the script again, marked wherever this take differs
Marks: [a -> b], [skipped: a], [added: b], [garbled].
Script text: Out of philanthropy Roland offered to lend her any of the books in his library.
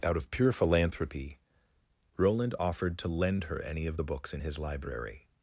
Out of [added: pure] philanthropy Roland offered to lend her any of the books in his library.